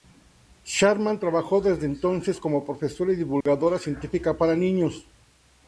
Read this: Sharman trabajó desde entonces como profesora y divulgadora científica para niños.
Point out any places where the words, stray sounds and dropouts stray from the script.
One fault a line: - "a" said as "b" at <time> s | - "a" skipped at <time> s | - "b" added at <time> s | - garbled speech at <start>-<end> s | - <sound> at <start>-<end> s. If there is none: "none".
- dropout at 3.4-3.5 s